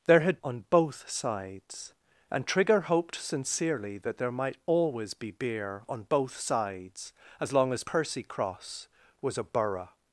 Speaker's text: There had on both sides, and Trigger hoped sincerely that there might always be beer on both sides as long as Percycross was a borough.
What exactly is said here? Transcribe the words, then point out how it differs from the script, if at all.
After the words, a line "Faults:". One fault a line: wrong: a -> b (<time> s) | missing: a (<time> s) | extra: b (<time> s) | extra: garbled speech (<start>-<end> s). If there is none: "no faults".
There had on both sides, and Trigger hoped sincerely that there might always be beer on both sides as long as Percycross was a borough.
Faults:
no faults